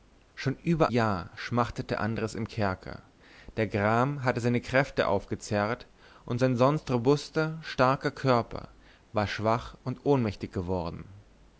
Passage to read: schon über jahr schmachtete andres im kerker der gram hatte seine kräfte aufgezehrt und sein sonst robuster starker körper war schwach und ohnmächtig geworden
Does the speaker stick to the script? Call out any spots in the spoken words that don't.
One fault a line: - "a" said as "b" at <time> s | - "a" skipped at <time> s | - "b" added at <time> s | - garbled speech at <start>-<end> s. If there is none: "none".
none